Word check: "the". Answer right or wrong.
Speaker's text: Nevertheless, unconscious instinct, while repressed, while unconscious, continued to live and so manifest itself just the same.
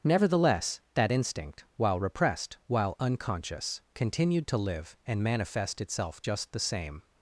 right